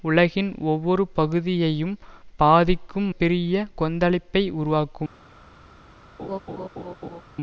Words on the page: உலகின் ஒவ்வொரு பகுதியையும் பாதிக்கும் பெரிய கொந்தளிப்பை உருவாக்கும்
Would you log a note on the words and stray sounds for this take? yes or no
yes